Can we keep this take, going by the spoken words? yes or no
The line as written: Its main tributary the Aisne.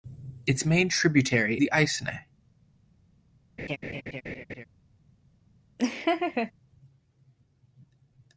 yes